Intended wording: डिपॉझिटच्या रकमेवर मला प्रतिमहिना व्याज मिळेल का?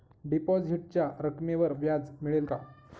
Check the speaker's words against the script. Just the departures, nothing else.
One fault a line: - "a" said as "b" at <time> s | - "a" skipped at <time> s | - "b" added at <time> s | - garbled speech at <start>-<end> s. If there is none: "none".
- "मला प्रतिमहिना" skipped at 1.7 s